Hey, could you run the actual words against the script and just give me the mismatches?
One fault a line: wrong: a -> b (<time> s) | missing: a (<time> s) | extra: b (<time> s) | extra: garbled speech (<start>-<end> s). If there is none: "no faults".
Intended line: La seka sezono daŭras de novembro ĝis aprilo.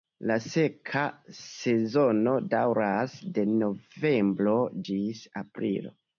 no faults